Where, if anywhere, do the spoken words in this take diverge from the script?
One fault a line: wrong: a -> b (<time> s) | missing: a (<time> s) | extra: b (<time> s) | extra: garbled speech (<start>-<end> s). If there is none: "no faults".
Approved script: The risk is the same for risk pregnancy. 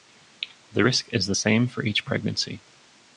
wrong: risk -> each (1.8 s)